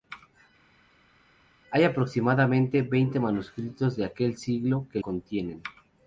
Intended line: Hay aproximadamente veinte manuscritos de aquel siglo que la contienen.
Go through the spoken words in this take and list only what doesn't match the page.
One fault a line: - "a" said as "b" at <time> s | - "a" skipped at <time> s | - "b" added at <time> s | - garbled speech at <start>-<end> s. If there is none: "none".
- "la" skipped at 5.0 s